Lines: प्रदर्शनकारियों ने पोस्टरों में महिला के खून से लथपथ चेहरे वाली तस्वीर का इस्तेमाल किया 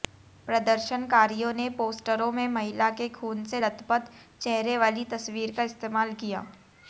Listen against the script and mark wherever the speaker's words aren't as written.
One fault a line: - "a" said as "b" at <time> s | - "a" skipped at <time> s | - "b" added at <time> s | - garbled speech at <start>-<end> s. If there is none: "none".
none